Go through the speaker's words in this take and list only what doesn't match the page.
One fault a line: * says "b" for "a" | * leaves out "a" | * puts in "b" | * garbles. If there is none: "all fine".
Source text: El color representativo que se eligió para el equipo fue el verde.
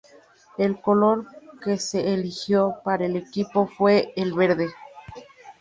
* leaves out "representativo"